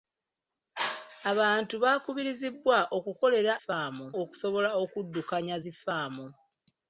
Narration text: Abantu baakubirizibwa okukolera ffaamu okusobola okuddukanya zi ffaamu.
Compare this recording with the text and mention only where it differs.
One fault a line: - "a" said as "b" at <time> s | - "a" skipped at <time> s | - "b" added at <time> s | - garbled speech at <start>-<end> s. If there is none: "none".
none